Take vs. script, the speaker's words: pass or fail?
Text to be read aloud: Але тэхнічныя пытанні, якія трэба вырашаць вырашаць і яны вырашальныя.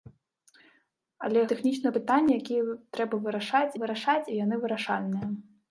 pass